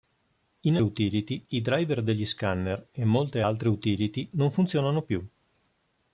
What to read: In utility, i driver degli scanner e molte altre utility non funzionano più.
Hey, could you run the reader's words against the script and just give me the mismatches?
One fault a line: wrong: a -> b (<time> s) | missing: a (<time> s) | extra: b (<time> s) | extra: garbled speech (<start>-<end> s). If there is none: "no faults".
no faults